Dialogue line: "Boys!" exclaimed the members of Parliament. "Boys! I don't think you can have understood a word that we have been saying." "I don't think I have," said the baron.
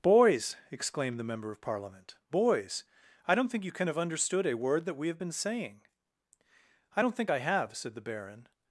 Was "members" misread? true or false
true